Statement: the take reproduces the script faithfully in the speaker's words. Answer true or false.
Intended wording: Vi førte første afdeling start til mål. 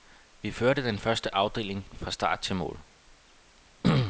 false